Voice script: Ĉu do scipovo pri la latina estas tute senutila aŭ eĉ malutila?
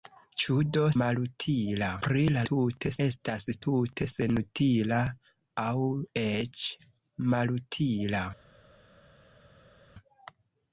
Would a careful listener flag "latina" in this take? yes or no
yes